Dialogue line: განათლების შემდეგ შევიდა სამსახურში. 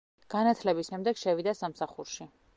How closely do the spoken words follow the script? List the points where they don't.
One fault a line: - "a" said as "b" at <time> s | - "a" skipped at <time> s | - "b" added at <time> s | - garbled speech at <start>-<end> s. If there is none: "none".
none